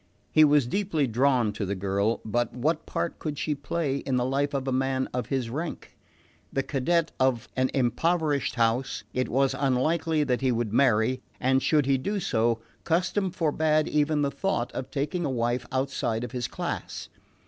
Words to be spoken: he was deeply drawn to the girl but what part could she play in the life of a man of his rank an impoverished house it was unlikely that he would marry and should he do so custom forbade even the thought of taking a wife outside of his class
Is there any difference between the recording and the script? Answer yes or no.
yes